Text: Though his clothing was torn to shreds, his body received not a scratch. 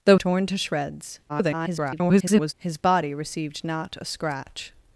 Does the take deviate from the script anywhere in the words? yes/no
yes